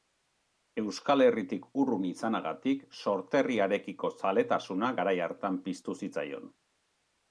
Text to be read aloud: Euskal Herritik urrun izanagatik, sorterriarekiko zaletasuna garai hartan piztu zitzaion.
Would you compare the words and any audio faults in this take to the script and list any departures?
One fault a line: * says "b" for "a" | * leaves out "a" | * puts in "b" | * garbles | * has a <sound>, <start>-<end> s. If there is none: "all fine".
all fine